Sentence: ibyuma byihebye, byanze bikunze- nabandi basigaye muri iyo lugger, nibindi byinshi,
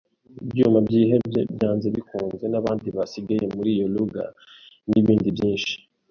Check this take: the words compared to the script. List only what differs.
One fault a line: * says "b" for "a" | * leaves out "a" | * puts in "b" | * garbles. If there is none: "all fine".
all fine